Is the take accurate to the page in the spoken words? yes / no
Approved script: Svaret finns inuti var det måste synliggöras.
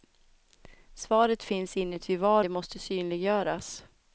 yes